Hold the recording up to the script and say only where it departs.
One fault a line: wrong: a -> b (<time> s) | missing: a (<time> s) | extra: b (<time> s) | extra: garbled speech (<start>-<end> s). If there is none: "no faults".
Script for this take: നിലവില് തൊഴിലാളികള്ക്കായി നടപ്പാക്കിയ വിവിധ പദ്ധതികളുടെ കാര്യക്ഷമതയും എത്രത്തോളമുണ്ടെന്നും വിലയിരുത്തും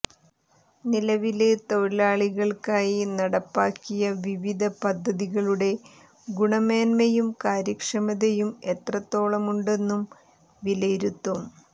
extra: ഗുണമേന്മയും (6.3 s)